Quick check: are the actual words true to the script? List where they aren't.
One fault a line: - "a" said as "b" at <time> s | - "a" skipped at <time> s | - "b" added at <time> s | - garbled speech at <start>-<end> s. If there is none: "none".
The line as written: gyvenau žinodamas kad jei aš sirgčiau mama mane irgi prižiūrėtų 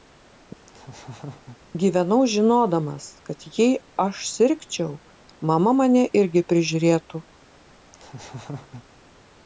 none